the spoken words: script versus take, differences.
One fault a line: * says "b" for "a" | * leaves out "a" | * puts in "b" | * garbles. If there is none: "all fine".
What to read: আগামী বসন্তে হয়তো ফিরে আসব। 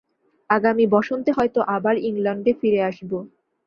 * puts in "আবার ইংলণ্ডে"